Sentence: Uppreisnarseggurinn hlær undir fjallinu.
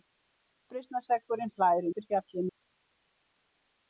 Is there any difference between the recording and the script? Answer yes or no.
no